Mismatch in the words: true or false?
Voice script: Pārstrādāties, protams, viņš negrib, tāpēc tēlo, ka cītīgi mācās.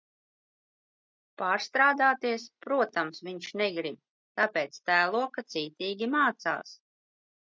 false